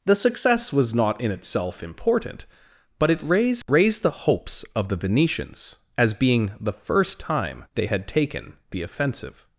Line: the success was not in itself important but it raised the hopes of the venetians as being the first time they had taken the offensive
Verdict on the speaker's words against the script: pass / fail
fail